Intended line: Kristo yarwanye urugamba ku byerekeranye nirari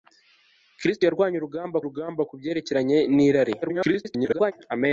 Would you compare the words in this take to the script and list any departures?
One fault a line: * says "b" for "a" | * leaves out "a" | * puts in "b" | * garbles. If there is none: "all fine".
* puts in "urugamba"
* garbles